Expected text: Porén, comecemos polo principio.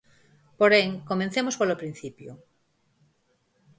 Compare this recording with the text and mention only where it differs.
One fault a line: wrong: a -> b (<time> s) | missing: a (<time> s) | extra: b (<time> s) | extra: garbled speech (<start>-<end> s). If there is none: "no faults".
no faults